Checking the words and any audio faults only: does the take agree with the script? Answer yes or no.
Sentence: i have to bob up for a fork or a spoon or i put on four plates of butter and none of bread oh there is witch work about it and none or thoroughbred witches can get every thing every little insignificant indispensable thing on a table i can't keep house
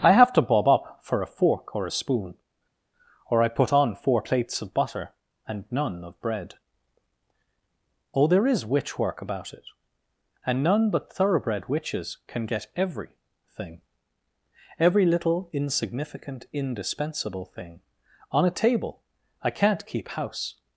no